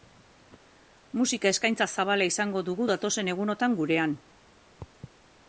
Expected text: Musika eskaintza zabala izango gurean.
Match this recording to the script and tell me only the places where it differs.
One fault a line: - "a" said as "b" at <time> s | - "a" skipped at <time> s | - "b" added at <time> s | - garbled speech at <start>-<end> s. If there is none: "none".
- "dugu datozen egunotan" added at 2.7 s